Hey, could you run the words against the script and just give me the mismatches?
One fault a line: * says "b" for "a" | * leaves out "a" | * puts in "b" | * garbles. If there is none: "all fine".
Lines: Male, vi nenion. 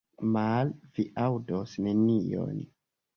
* puts in "aŭdos"